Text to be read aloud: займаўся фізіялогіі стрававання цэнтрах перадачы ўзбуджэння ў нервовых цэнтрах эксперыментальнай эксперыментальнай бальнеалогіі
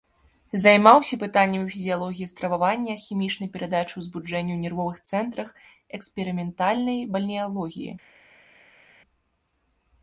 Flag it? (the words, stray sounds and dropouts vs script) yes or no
yes